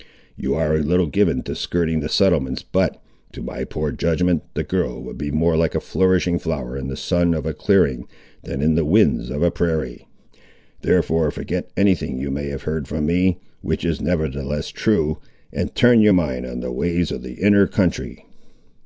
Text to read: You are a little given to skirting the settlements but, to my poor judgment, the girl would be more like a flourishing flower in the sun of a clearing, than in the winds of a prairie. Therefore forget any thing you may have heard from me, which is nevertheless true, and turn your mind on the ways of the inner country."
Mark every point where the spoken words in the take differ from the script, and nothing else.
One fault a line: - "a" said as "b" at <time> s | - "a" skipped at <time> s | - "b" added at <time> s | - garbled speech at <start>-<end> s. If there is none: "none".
none